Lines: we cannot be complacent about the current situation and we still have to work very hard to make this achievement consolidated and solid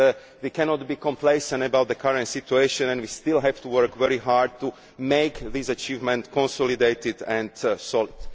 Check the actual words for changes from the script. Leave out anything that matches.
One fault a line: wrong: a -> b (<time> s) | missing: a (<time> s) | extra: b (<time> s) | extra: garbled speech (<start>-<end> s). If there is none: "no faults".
no faults